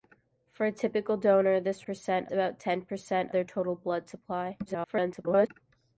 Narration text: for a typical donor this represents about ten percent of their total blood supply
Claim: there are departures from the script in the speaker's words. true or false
true